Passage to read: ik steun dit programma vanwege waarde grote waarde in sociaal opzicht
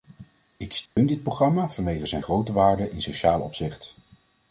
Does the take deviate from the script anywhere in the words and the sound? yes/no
yes